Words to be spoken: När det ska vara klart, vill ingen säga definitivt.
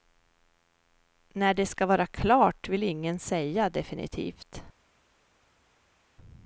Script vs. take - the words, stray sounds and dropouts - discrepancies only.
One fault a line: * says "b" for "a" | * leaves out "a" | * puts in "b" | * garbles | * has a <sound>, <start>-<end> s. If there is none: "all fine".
all fine